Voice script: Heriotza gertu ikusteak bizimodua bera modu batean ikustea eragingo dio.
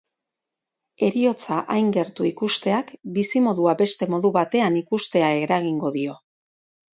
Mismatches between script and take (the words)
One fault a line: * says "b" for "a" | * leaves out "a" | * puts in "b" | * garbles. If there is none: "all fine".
* puts in "hain"
* says "beste" for "bera"